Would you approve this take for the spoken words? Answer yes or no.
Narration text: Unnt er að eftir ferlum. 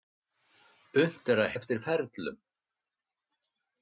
yes